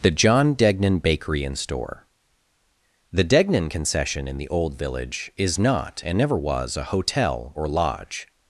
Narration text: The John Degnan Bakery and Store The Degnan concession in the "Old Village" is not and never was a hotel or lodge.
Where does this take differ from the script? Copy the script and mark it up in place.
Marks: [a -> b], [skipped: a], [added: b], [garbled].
The John Degnan Bakery and Store The Degnan concession in the "Old Village" is not and never was a hotel or lodge.